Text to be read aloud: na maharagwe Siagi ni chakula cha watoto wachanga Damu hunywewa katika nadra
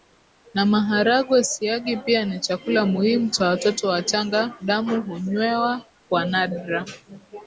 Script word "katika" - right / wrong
wrong